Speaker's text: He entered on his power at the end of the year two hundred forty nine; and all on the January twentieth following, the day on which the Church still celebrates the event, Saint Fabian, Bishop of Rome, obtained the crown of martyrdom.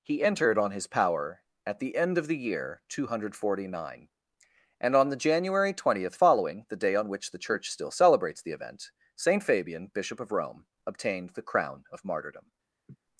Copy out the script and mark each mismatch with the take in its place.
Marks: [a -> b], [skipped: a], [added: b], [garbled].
He entered on his power at the end of the year two hundred forty nine; and [skipped: all] on the January twentieth following, the day on which the Church still celebrates the event, Saint Fabian, Bishop of Rome, obtained the crown of martyrdom.